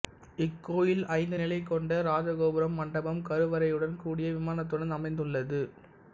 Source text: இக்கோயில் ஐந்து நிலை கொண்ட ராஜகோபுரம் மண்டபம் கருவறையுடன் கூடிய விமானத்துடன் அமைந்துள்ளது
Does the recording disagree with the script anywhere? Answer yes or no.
no